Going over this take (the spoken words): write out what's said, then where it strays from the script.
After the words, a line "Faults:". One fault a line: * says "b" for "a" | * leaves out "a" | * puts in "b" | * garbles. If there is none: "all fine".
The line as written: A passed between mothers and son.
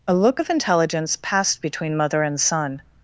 A look of intelligence passed between mother and son.
Faults:
* puts in "look of intelligence"
* says "mother" for "mothers"